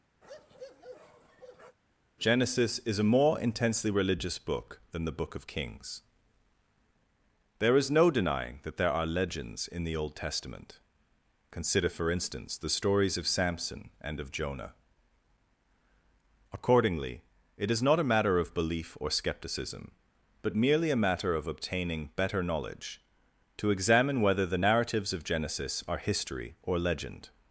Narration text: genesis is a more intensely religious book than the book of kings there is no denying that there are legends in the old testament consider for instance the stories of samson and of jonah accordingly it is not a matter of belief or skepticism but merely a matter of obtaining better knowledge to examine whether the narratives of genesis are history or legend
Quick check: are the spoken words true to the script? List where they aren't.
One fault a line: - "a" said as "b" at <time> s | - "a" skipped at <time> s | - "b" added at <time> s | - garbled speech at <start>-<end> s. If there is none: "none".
none